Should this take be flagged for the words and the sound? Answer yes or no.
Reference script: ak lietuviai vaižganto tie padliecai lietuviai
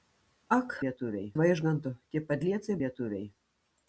no